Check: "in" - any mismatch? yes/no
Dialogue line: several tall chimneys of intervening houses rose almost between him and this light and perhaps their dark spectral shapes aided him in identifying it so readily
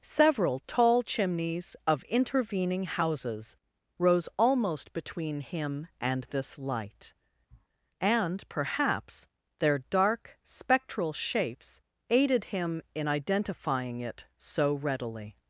no